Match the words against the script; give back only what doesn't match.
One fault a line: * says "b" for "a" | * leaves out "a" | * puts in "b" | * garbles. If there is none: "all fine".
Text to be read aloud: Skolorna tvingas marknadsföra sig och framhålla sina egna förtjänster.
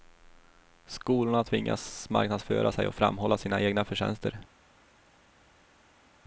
all fine